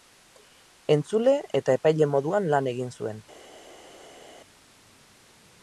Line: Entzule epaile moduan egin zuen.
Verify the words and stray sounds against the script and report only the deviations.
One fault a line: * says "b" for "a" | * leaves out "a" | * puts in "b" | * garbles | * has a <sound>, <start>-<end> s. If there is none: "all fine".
* puts in "eta"
* puts in "lan"